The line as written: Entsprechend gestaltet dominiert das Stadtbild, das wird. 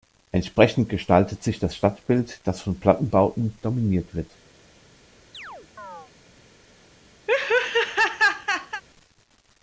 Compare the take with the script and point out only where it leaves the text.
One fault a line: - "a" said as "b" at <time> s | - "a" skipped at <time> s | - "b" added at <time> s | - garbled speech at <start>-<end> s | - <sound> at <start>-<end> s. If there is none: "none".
- "dominiert" said as "sich" at 1.4 s
- "von Plattenbauten dominiert" added at 2.6 s
- chirp at 5.3-6.1 s
- laugh at 7.3-8.8 s